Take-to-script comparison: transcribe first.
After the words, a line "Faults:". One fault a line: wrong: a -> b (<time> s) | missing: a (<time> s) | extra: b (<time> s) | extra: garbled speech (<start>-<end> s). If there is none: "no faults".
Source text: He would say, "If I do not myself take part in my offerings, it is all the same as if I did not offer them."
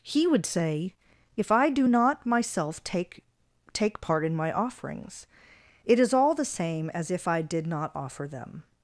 He would say, "If I do not myself take take part in my offerings, it is all the same as if I did not offer them."
Faults:
extra: take (3.7 s)